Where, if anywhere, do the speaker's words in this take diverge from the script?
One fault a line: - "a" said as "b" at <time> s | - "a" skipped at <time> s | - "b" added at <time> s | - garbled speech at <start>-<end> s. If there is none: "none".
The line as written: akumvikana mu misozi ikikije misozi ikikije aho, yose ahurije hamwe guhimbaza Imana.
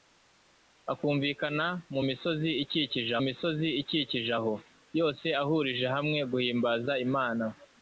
none